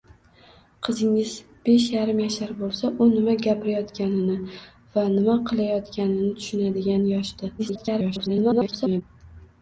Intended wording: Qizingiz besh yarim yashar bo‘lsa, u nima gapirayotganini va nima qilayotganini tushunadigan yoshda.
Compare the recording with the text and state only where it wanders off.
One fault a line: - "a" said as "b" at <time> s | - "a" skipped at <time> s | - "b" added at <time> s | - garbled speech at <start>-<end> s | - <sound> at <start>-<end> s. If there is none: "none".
- garbled speech at 7.6-9.0 s